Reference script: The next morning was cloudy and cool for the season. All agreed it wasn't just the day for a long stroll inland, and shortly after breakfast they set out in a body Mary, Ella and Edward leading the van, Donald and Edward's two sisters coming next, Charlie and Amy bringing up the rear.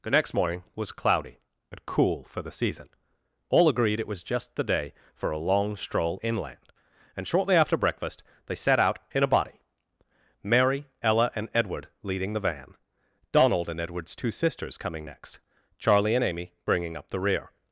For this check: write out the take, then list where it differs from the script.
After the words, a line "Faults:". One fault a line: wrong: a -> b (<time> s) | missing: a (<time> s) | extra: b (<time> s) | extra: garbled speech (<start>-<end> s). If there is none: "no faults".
The next morning was cloudy and cool for the season. All agreed it was just the day for a long stroll inland, and shortly after breakfast they set out in a body Mary, Ella and Edward leading the van, Donald and Edward's two sisters coming next, Charlie and Amy bringing up the rear.
Faults:
wrong: wasn't -> was (4.1 s)